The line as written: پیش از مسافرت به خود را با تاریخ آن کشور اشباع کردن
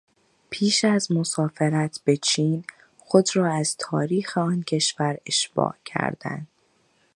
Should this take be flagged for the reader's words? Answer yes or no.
yes